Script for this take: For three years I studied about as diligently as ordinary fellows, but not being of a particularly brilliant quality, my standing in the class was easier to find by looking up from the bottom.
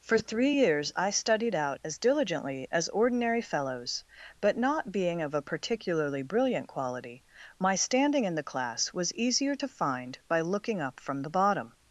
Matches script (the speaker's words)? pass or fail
fail